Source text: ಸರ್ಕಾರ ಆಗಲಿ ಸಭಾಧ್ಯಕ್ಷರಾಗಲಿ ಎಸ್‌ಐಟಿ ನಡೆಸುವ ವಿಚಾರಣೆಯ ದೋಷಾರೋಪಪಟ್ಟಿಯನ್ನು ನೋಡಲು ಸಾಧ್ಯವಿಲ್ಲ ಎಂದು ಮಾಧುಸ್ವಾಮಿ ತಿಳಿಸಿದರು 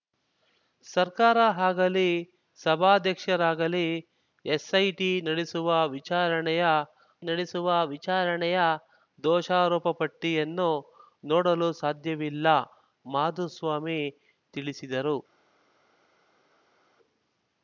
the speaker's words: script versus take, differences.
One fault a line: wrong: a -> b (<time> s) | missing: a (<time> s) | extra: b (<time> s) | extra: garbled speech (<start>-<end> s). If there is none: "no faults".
extra: ನಡೆಸುವ ವಿಚಾರಣೆಯ (7.2 s)
missing: ಎಂದು (12.5 s)